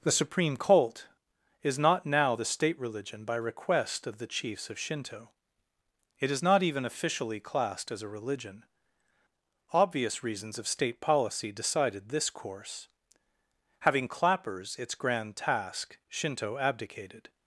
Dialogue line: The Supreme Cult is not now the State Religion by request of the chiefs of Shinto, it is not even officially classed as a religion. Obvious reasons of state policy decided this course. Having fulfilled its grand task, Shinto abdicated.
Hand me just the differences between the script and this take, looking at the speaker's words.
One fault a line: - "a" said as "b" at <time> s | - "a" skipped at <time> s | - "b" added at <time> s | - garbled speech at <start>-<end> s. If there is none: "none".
- "fulfilled" said as "clappers" at 14.1 s